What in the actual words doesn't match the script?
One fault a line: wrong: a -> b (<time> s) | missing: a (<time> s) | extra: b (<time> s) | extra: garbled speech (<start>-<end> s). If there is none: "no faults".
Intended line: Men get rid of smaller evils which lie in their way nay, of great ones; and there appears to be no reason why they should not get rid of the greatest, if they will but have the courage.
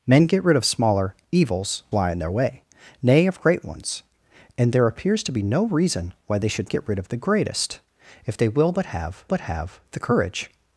missing: which (1.8 s)
missing: not (6.7 s)
extra: but have (9.3 s)